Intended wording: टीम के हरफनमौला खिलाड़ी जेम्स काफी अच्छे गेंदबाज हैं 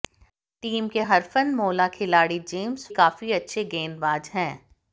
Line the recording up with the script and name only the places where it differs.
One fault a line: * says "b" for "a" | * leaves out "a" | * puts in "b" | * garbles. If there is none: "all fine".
all fine